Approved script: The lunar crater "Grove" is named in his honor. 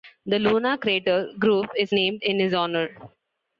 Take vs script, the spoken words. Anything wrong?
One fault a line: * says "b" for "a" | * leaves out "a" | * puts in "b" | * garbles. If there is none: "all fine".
all fine